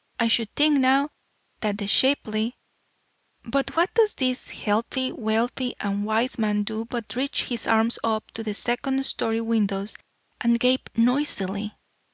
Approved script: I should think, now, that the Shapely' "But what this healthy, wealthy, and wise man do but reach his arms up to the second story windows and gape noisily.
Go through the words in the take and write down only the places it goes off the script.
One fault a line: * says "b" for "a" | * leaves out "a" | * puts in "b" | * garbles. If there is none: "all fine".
* puts in "does"